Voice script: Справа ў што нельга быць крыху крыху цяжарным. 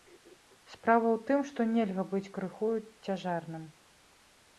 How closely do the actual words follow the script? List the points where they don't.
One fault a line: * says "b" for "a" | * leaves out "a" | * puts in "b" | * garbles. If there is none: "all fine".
* puts in "тым"
* leaves out "крыху"